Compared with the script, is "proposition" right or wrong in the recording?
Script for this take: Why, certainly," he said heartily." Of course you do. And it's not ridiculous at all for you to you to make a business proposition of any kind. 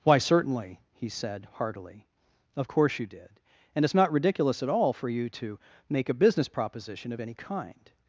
right